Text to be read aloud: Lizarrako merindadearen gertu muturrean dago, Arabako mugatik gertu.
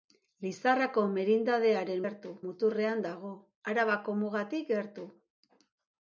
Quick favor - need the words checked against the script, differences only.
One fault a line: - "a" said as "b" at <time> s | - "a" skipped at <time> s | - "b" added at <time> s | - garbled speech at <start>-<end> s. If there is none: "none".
none